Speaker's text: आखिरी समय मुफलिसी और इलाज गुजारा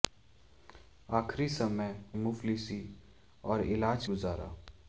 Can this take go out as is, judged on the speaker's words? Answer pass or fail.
pass